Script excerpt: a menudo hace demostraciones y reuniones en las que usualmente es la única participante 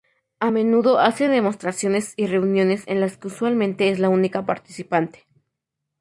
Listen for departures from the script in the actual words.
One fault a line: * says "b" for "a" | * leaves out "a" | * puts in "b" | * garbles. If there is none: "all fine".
all fine